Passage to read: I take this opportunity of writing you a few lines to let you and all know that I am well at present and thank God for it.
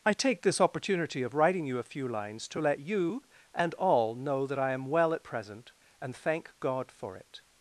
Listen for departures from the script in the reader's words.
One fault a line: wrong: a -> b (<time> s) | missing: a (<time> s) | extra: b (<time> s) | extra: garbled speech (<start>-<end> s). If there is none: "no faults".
no faults